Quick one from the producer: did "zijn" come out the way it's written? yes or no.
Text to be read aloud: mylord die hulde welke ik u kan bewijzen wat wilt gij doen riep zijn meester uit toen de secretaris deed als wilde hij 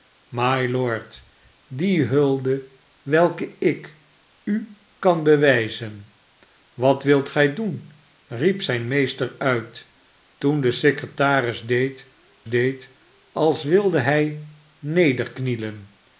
yes